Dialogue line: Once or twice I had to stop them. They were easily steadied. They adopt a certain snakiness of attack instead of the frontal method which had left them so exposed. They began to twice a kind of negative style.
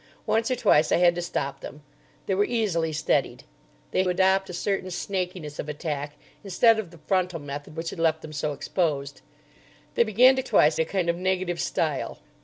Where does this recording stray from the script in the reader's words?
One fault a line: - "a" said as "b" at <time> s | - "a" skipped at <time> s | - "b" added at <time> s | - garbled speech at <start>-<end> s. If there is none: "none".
none